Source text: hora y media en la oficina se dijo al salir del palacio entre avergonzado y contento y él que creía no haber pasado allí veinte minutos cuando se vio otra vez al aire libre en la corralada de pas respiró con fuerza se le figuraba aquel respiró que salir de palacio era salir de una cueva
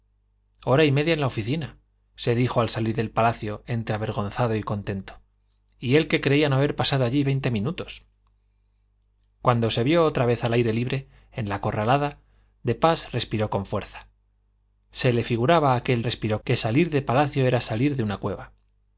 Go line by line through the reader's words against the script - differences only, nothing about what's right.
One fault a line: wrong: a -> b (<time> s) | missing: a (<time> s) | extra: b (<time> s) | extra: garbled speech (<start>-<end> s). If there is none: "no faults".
no faults